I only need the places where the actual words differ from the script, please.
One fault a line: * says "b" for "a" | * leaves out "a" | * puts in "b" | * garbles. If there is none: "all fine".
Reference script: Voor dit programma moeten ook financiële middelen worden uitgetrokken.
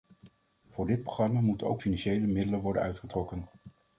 all fine